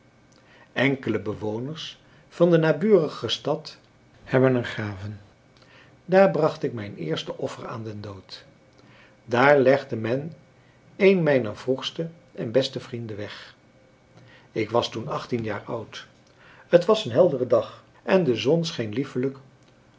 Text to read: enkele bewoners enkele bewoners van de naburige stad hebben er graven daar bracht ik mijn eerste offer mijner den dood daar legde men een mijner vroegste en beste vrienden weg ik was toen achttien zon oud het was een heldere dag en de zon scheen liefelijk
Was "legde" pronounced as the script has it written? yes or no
yes